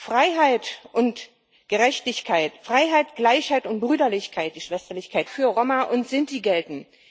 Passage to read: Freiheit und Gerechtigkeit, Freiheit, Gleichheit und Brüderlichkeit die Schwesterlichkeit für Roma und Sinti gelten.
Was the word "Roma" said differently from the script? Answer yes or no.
no